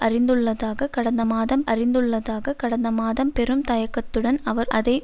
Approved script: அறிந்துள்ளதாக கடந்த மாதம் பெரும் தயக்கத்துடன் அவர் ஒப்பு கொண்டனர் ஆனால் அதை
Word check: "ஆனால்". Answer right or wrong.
wrong